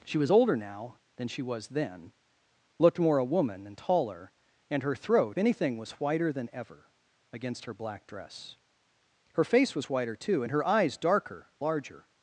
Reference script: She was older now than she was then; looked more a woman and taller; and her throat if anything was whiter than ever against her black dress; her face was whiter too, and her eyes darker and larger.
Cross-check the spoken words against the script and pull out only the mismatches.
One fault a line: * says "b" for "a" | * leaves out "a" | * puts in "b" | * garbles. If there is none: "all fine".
* leaves out "if"
* leaves out "and"